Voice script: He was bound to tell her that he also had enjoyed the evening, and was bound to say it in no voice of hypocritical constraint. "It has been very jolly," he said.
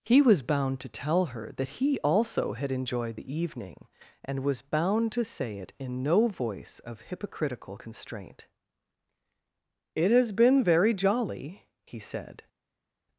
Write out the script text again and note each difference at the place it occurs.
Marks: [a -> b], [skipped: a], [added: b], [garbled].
He was bound to tell her that he also had enjoyed the evening, and was bound to say it in no voice of hypocritical constraint. "It has been very jolly," he said.